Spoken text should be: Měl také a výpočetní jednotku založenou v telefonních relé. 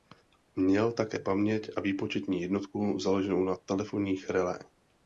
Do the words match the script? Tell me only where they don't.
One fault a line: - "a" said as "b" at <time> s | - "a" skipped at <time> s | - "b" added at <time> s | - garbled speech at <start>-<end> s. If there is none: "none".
- "paměť" added at 1.2 s
- "v" said as "na" at 3.4 s